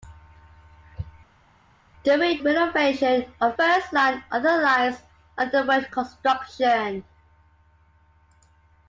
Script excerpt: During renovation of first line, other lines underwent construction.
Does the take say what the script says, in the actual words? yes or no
yes